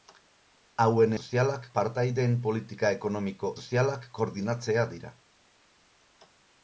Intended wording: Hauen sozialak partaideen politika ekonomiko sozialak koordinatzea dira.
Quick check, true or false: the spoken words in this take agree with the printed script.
true